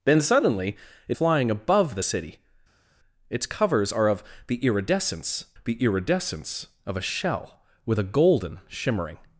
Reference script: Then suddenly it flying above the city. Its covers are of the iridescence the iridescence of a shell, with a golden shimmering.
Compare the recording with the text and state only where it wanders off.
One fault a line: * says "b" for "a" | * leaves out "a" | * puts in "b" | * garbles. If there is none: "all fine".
all fine